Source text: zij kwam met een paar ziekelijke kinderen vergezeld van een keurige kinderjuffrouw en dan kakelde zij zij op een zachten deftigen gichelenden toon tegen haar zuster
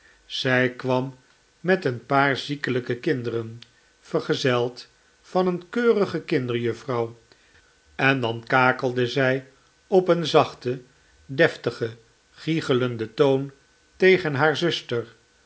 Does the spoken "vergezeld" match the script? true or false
true